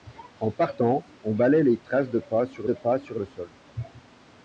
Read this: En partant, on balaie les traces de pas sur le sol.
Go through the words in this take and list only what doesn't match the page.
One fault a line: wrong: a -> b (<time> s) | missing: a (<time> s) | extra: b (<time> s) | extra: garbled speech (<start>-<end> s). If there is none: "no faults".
extra: de pas sur (2.6 s)